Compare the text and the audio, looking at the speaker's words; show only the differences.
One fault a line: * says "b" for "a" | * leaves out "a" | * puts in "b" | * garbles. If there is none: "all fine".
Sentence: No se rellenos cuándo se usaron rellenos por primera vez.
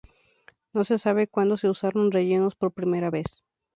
* says "sabe" for "rellenos"